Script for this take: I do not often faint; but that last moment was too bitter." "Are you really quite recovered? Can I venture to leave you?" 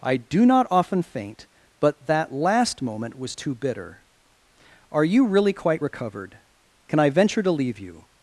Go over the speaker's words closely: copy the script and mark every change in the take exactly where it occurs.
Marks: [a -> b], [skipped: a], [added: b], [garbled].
I do not often faint; but that last moment was too bitter." "Are you really quite recovered? Can I venture to leave you?"